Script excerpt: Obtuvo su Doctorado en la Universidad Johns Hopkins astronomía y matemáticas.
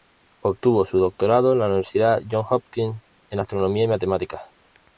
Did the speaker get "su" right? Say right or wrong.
right